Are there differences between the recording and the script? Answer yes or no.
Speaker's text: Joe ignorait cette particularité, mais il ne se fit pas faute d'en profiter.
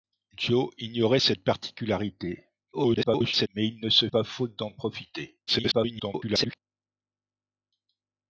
yes